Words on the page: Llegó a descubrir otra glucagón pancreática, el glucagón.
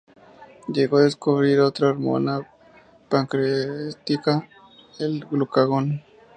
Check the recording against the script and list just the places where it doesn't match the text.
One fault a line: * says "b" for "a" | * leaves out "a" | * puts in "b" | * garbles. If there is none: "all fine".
* says "hormona" for "glucagón"